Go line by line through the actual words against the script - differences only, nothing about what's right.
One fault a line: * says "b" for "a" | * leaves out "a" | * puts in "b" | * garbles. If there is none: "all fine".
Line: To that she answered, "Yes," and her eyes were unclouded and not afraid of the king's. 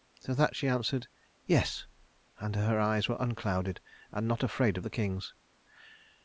all fine